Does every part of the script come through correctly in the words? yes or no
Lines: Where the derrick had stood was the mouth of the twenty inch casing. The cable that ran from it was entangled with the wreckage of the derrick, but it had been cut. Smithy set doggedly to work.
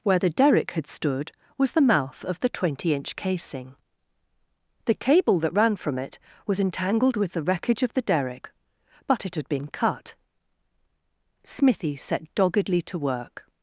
yes